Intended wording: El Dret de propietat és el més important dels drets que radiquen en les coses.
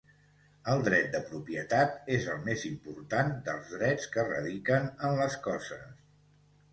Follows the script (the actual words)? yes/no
yes